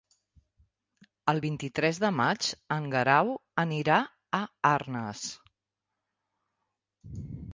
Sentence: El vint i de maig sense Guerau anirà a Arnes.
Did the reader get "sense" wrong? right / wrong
wrong